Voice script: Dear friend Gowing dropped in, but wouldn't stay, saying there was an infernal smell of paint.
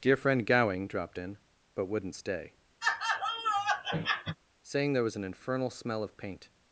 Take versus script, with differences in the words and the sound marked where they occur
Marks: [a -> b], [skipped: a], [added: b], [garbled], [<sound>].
Dear friend Gowing dropped in, but wouldn't stay, [laugh] saying there was an infernal smell of paint.